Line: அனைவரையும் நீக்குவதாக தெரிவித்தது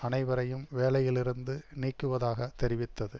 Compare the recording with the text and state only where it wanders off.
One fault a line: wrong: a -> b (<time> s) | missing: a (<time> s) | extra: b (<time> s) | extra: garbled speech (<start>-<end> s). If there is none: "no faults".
extra: வேலையிலிருந்து (0.7 s)